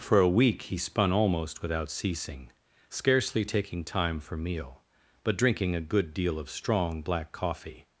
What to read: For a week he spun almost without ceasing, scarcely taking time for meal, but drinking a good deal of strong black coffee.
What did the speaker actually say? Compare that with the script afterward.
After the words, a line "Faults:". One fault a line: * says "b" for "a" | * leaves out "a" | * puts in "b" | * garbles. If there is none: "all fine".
For a week he spun almost without ceasing, scarcely taking time for meal, but drinking a good deal of strong black coffee.
Faults:
all fine